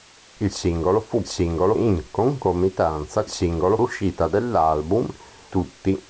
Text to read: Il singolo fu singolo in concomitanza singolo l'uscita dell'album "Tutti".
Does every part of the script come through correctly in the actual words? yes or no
yes